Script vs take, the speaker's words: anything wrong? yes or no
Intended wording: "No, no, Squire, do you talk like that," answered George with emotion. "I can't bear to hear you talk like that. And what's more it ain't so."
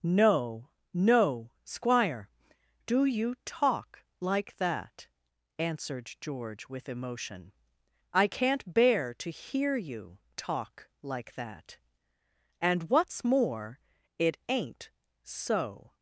no